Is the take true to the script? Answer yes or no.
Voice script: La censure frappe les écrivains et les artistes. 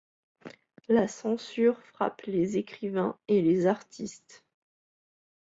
yes